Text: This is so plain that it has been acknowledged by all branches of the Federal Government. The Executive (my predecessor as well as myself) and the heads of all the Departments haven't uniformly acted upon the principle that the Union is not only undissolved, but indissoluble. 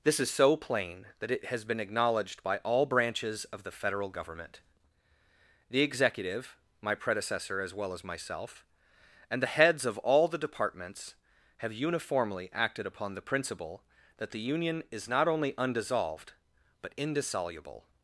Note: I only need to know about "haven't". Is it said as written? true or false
false